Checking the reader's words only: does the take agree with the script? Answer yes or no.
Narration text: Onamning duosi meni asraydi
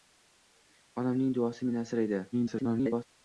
no